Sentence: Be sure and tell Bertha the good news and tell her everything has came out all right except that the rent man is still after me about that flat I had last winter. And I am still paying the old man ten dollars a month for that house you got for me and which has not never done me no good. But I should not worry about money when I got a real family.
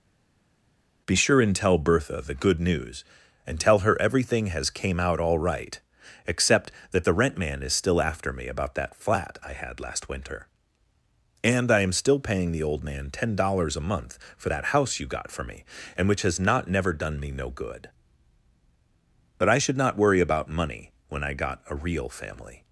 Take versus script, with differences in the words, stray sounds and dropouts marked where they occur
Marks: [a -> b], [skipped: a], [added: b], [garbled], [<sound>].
Be sure and tell Bertha the good news and tell her everything has came out all right except that the rent man is still after me about that flat I had last winter. And I am still paying the old man ten dollars a month for that house you got for me and which has not never done me no good. But I should not worry about money when I got a real family.